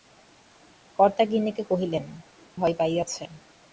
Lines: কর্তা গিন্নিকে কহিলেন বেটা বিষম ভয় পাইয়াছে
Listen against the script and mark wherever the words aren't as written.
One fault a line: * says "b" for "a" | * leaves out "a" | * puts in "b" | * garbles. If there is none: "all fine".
* leaves out "বেটা বিষম"